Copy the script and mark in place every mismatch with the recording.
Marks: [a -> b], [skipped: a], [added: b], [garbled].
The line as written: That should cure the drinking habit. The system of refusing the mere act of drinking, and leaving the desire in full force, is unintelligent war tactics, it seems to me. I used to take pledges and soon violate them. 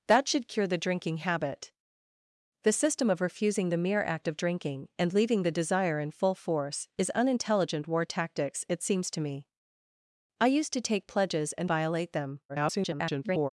That should cure the drinking habit. The system of refusing the mere act of drinking, and leaving the desire in full force, is unintelligent war tactics, it seems to me. I used to take pledges and [skipped: soon] violate them. [garbled]